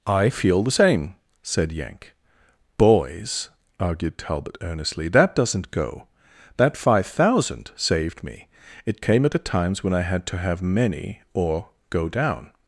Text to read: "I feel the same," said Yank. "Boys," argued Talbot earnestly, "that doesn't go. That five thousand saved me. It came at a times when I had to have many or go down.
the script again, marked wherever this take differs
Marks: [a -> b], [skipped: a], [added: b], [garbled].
"I feel the same," said Yank. "Boys," argued Talbot earnestly, "that doesn't go. That five thousand saved me. It came at a times when I had to have many or go down.